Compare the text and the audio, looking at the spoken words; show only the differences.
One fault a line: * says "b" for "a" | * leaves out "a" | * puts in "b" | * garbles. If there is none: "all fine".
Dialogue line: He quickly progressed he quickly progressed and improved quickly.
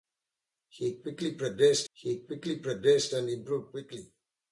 all fine